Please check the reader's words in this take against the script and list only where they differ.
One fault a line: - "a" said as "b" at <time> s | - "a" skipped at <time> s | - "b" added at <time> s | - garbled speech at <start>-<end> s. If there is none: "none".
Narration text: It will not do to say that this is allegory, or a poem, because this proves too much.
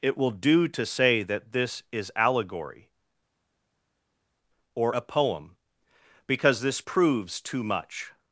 - "not" skipped at 0.3 s